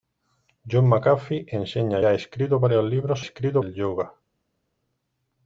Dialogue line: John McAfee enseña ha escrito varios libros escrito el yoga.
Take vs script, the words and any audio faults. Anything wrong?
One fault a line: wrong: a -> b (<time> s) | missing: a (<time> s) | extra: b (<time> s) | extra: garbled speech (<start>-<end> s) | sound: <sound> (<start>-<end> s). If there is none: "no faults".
no faults